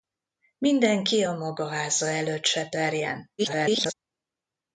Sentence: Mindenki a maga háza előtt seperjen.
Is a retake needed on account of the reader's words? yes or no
yes